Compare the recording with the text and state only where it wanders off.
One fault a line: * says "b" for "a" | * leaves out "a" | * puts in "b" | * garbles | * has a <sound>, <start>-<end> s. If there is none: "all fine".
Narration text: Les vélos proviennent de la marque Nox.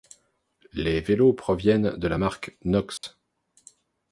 * has a dropout, 3.0-3.0 s